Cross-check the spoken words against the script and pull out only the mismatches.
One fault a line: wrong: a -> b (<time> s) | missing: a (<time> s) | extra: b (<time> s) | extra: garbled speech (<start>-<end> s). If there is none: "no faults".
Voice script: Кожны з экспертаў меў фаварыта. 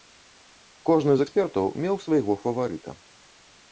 extra: свайго (2.1 s)